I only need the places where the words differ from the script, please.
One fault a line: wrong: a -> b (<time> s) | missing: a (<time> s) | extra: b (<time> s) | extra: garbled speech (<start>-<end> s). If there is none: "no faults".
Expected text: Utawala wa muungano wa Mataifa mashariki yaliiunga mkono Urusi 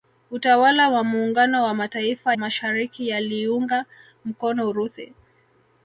no faults